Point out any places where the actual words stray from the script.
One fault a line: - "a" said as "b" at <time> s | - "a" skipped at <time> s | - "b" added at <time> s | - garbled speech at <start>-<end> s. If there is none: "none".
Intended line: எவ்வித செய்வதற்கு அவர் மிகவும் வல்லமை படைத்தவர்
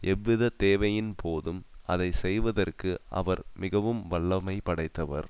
- "தேவையின் போதும் அதை" added at 0.6 s